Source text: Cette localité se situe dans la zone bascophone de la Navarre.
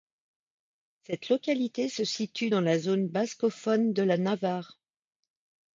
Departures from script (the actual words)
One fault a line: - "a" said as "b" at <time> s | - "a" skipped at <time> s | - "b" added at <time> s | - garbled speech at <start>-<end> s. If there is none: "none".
none